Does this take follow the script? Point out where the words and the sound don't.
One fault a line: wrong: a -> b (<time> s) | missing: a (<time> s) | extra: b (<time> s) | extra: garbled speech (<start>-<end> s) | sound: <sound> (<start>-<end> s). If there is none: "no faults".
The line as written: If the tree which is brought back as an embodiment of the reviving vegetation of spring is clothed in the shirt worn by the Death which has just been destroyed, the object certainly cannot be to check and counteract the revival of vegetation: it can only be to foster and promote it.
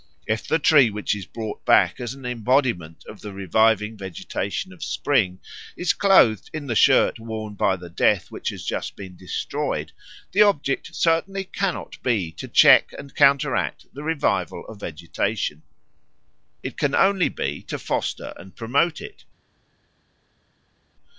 no faults